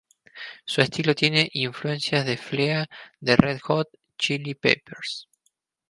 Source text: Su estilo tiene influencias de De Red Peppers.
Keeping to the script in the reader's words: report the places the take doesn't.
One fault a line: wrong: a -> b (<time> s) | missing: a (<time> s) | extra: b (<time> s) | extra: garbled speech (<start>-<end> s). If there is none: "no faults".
extra: Flea (2.4 s)
extra: Hot Chili (3.6 s)